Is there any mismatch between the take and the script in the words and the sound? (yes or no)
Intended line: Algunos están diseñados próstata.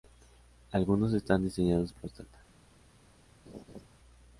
yes